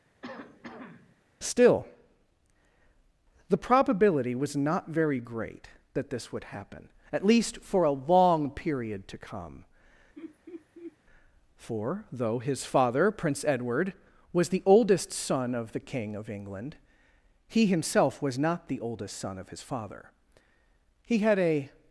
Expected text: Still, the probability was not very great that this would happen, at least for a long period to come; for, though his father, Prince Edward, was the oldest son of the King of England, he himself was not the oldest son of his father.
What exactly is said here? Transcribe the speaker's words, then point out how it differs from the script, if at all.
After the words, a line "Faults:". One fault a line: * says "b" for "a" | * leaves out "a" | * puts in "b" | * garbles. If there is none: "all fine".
Still, the probability was not very great that this would happen, at least for a long period to come; for, though his father, Prince Edward, was the oldest son of the King of England, he himself was not the oldest son of his father. He had a
Faults:
* puts in "He had a"